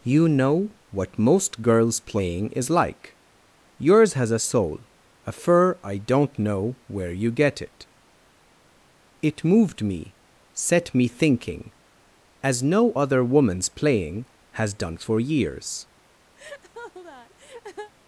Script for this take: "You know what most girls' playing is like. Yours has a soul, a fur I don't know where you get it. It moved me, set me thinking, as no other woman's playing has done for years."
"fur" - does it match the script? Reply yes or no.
yes